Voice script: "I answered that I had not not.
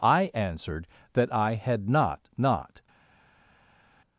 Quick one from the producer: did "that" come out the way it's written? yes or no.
yes